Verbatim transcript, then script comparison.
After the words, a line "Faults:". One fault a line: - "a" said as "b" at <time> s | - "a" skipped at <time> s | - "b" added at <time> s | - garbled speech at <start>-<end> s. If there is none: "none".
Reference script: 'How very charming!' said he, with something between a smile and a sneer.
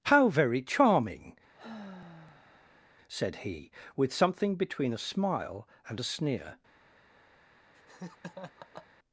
'How very charming!' said he, with something between a smile and a sneer.
Faults:
none